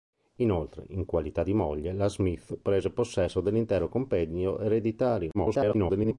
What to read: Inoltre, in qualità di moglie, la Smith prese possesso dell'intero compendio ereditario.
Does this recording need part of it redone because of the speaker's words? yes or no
yes